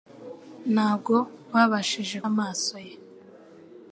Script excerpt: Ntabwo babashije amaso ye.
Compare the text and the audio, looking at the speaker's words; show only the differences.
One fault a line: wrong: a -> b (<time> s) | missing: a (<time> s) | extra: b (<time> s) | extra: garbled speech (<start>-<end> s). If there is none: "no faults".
no faults